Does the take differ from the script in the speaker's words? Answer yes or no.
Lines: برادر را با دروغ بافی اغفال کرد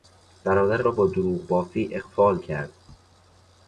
no